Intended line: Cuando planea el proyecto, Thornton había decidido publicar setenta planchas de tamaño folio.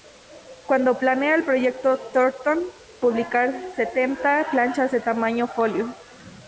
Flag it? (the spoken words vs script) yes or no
yes